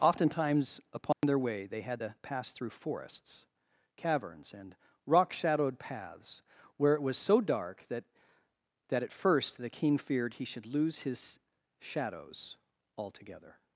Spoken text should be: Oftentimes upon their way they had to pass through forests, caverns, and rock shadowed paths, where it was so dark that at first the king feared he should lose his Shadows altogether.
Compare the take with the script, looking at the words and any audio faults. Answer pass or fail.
fail